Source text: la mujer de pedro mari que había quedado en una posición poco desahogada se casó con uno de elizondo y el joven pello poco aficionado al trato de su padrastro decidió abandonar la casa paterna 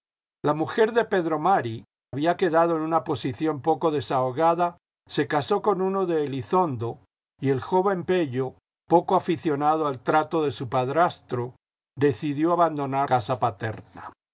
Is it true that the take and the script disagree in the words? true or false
true